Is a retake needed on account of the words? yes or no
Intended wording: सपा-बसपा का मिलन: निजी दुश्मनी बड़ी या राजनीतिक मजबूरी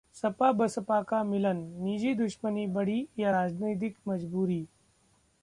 no